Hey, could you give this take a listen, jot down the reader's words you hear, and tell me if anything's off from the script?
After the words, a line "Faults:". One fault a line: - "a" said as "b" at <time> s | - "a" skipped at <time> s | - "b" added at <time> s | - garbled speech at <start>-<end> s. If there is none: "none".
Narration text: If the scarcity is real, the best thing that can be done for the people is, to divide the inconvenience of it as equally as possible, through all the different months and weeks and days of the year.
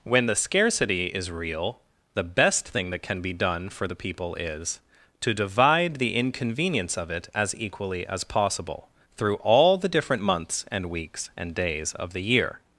When the scarcity is real, the best thing that can be done for the people is, to divide the inconvenience of it as equally as possible, through all the different months and weeks and days of the year.
Faults:
- "If" said as "When" at 0.0 s